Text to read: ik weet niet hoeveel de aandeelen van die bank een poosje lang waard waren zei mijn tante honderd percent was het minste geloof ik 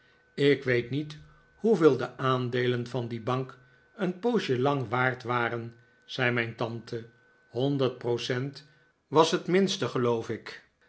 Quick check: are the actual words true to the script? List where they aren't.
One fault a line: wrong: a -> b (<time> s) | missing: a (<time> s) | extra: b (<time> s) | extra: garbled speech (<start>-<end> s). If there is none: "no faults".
no faults